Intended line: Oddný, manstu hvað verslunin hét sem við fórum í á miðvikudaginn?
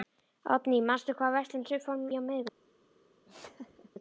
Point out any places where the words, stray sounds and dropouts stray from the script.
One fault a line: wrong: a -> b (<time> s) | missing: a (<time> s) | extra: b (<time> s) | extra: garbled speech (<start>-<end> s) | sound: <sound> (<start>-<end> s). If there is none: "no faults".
missing: hét (1.7 s)
missing: í (2.1 s)
sound: laugh (3.2-3.9 s)